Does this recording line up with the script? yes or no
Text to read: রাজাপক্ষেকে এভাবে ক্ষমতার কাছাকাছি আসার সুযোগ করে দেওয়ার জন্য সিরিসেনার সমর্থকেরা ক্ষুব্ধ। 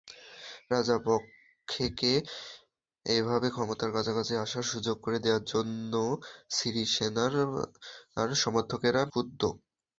yes